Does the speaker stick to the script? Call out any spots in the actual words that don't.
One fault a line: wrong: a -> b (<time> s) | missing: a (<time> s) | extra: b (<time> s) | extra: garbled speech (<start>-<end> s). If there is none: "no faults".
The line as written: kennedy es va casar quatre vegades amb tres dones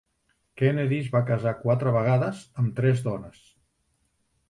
no faults